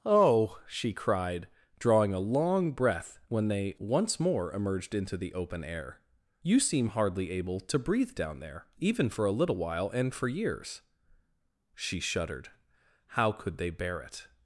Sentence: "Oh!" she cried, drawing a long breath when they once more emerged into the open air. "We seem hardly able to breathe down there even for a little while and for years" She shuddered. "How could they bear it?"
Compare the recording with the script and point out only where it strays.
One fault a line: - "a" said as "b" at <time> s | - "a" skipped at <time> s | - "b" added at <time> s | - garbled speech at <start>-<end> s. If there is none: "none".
- "We" said as "You" at 6.4 s